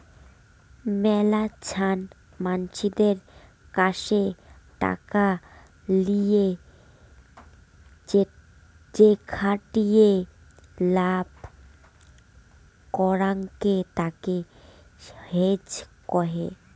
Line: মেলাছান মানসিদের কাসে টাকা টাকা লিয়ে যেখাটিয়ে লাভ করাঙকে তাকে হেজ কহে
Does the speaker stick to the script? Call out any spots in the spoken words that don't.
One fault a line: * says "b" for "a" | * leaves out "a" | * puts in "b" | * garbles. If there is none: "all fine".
* leaves out "টাকা"